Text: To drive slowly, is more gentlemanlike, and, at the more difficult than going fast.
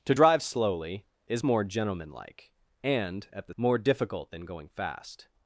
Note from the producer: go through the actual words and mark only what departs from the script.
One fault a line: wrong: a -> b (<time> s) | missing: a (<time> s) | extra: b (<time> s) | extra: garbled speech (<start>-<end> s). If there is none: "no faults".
no faults